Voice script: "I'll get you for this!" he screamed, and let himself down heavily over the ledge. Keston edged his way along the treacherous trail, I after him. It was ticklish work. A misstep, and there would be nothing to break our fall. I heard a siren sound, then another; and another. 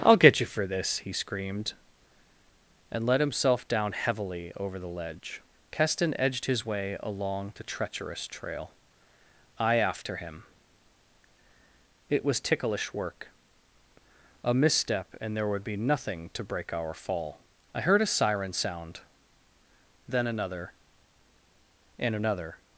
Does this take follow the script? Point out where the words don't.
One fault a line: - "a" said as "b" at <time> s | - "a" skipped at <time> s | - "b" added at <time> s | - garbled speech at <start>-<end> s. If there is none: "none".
none